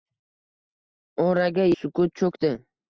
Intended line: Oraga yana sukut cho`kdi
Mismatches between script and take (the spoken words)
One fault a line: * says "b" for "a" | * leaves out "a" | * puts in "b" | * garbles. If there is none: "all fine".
* leaves out "yana"